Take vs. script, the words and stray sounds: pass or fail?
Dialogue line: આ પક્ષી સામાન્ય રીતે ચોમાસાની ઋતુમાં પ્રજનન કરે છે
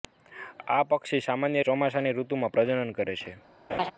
fail